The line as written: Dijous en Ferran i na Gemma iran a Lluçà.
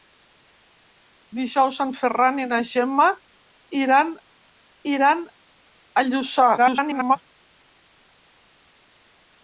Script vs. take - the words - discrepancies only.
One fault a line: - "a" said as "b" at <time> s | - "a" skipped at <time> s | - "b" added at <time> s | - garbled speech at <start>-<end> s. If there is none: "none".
- "iran" added at 4.9 s
- garbled speech at 6.6-7.2 s